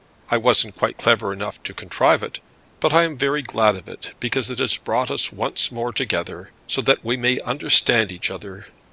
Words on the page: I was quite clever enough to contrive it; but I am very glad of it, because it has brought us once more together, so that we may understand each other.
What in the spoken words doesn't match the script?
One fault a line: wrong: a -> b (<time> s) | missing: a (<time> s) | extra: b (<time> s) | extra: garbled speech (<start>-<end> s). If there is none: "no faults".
wrong: was -> wasn't (0.4 s)